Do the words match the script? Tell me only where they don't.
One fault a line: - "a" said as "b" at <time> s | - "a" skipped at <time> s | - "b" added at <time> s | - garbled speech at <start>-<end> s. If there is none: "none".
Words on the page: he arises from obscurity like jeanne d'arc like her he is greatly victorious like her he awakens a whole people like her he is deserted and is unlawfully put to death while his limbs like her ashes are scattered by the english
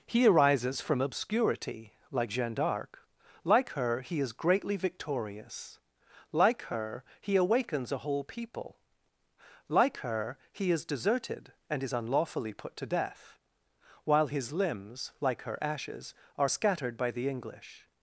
none